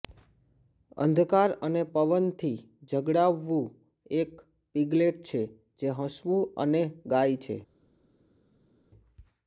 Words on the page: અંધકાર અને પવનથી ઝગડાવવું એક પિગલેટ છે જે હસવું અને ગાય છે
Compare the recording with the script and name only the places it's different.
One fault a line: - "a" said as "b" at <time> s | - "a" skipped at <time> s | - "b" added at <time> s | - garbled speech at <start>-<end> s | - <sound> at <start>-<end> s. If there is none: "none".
none